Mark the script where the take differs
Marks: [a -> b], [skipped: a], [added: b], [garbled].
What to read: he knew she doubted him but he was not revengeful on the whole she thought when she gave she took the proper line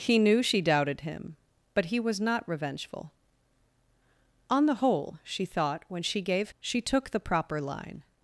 he knew she doubted him but he was not revengeful on the whole she thought when she gave she took the proper line